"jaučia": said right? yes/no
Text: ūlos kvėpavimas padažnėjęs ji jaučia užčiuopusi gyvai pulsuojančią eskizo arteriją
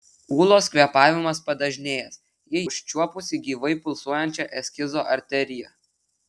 no